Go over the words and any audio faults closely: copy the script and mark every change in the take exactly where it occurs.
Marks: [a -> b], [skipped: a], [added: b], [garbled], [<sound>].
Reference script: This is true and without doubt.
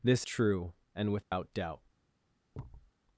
This [skipped: is] true and without [dropout] doubt. [thud]